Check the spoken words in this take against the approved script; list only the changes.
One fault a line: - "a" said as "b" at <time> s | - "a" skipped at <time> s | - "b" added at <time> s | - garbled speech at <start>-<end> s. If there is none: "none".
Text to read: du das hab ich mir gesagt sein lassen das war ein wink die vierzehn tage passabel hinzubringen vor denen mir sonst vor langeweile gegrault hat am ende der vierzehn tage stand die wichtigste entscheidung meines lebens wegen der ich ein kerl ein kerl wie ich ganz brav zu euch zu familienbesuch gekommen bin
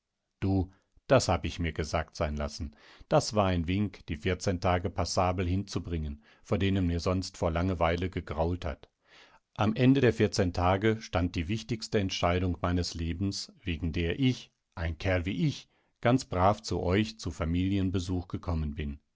- "ein kerl" skipped at 15.2 s